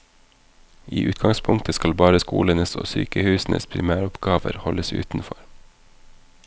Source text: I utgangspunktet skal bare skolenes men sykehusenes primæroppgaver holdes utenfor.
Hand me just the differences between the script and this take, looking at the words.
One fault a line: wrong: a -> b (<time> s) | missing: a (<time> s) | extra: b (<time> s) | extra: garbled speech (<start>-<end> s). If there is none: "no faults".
wrong: men -> og (2.7 s)